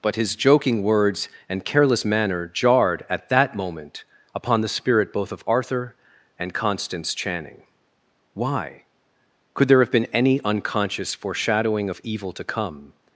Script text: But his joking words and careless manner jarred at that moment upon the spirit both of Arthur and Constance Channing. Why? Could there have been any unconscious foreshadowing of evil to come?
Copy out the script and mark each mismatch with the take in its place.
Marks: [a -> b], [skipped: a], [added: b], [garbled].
But his joking words and careless manner jarred at that moment upon the spirit both of Arthur and Constance Channing. Why? Could there have been any unconscious foreshadowing of evil to come?